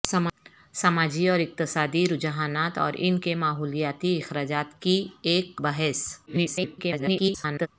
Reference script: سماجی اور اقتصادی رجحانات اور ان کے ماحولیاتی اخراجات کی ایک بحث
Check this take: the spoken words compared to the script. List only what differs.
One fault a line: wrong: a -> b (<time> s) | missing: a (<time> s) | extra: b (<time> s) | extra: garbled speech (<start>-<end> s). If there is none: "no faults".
extra: garbled speech (6.3-7.7 s)